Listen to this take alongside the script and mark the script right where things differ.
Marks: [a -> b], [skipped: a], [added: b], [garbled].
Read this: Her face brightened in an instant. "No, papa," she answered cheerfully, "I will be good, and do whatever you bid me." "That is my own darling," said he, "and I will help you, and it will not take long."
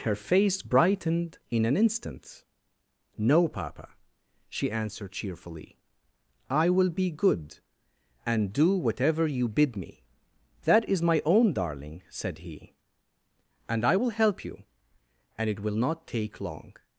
Her face brightened in an instant. "No, papa," she answered cheerfully, "I will be good, and do whatever you bid me." "That is my own darling," said he, "and I will help you, and it will not take long."